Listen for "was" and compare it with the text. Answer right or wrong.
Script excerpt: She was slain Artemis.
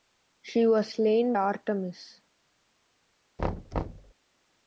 right